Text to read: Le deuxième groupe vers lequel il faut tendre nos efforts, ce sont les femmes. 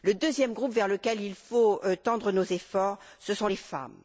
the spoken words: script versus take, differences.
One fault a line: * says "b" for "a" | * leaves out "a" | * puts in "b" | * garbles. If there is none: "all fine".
all fine